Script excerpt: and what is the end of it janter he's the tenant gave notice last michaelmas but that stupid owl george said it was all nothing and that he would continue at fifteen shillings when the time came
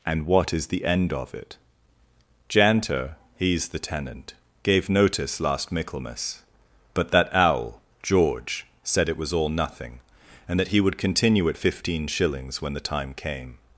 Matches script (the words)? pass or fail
fail